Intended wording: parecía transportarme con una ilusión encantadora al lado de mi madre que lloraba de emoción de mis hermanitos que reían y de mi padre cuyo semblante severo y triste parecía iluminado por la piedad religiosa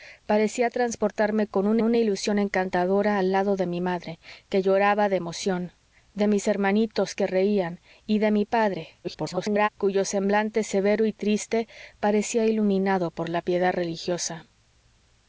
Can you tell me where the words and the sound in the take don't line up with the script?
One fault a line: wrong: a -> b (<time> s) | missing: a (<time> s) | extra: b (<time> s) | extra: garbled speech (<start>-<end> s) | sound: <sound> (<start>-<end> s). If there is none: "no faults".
extra: una (1.8 s)
extra: garbled speech (9.0-9.7 s)